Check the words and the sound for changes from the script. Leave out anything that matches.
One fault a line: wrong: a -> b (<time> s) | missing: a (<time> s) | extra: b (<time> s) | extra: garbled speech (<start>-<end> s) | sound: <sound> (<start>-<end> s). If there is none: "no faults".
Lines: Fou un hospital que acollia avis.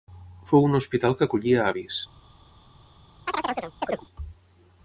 sound: chirp (3.3-4.1 s)